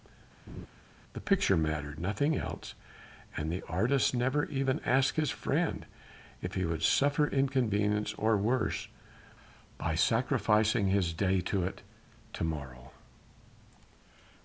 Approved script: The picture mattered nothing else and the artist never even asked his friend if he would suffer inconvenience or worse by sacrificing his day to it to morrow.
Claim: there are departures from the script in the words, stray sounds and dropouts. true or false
true